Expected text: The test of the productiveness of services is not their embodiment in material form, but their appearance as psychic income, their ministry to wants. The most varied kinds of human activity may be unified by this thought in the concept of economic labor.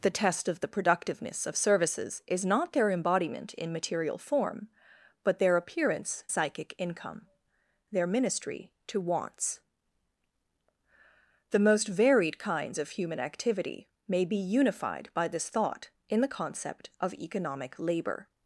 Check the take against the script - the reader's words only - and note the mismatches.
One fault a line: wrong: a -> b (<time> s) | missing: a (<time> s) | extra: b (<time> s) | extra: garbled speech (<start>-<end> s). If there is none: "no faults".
missing: as (6.2 s)